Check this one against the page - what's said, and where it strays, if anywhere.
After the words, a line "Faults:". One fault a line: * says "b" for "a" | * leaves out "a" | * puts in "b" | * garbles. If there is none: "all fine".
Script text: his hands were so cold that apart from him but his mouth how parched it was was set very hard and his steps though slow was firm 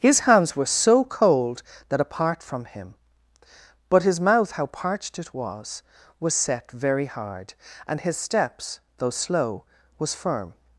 his hands were so cold that apart from him but his mouth how parched it was was set very hard and his steps though slow was firm
Faults:
all fine